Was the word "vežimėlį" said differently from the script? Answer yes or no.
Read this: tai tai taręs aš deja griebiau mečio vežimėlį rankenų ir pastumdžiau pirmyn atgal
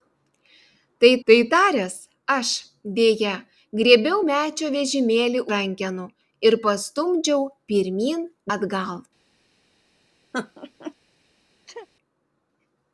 no